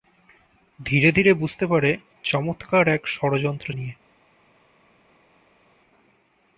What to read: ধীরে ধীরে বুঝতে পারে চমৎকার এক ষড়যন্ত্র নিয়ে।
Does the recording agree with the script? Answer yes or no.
yes